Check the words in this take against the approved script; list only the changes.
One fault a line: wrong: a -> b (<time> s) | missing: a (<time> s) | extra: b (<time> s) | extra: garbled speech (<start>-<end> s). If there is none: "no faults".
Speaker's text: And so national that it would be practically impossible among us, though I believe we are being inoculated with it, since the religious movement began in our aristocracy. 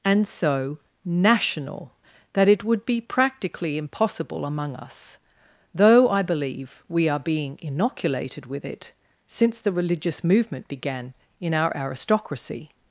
no faults